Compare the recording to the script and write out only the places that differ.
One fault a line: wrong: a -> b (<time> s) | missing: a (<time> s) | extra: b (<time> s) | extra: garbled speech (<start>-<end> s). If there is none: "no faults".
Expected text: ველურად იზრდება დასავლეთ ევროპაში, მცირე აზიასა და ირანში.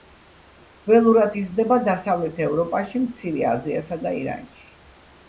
no faults